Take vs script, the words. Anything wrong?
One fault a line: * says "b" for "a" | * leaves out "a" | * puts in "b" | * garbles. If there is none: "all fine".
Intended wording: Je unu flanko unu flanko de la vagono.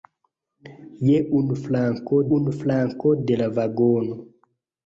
all fine